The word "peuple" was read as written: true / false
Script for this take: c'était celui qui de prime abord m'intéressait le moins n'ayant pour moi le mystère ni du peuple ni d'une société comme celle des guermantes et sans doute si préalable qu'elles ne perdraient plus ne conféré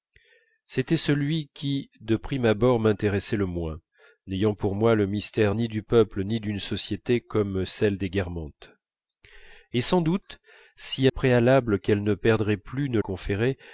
true